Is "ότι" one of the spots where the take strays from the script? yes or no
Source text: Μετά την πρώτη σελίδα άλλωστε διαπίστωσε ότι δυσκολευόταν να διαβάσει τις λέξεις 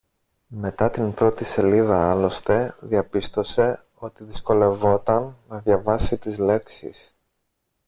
no